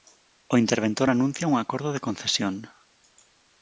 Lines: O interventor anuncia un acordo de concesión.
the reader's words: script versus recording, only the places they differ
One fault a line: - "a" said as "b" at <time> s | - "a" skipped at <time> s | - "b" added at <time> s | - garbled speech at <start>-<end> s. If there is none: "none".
none